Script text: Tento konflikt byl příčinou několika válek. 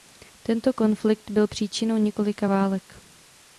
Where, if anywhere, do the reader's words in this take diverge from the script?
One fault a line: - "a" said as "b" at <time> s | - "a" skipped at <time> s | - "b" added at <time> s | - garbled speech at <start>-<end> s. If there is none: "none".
none